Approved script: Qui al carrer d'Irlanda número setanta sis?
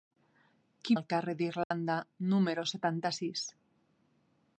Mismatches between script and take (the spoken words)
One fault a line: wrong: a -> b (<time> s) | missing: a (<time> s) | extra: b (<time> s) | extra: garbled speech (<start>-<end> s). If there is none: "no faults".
no faults